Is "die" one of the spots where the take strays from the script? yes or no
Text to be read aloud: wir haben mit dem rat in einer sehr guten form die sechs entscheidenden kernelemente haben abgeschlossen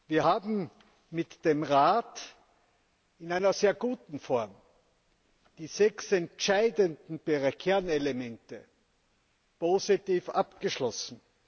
no